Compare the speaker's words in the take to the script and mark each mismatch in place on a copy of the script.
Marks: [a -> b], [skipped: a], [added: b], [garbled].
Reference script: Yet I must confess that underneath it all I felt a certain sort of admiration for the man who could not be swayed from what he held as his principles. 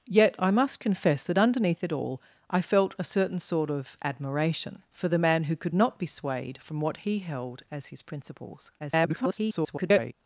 Yet I must confess that underneath it all I felt a certain sort of admiration for the man who could not be swayed from what he held as his principles. [garbled]